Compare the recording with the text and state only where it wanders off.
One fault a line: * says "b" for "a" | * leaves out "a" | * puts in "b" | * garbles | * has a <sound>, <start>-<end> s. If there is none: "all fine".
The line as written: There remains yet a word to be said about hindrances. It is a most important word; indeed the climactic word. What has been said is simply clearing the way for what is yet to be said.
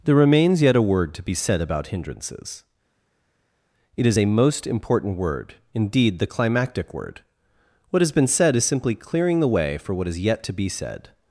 all fine